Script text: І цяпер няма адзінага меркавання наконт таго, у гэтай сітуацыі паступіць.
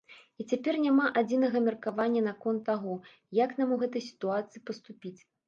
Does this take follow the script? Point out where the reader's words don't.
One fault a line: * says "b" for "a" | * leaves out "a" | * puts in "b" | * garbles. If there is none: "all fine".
* puts in "як нам"